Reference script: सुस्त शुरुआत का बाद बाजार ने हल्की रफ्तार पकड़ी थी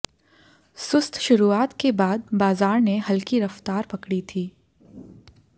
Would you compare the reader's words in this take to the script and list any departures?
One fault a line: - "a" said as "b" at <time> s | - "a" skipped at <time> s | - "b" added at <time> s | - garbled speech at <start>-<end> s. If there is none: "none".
- "का" said as "के" at 1.8 s